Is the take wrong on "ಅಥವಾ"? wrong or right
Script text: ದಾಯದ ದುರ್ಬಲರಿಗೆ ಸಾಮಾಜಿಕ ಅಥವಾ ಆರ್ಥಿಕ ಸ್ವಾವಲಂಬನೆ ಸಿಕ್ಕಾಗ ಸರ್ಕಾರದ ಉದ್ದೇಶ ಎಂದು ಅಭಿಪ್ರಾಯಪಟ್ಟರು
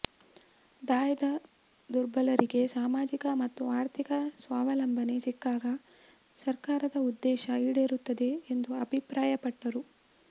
wrong